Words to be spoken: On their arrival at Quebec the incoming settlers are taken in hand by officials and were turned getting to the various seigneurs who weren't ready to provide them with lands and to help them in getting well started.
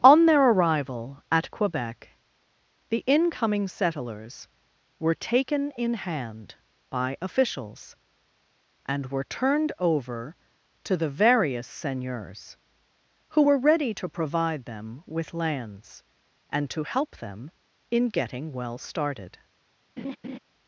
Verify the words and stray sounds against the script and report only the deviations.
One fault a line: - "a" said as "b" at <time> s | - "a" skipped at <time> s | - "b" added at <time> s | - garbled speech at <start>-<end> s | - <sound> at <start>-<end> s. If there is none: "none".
- "are" said as "were" at 5.0 s
- "getting" said as "over" at 9.8 s
- "weren't" said as "were" at 13.4 s
- laugh at 20.0-20.4 s